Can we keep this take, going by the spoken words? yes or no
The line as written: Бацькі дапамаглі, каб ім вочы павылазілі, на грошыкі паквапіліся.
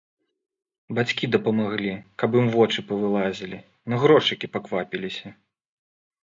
yes